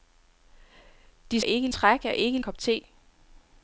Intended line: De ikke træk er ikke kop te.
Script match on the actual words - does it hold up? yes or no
yes